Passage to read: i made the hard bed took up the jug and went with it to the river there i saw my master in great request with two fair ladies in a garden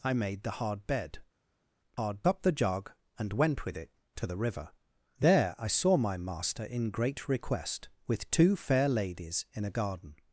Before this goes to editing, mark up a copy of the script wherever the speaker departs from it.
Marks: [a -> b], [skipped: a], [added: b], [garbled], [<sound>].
i made the hard bed [took -> hard] up the jug and went with it to the river there i saw my master in great request with two fair ladies in a garden